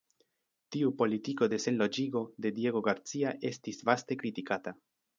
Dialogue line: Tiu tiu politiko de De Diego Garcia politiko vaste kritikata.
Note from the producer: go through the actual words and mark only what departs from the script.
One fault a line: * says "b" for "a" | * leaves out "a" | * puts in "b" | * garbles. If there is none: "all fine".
* leaves out "tiu"
* puts in "Senloĝigo"
* says "estis" for "politiko"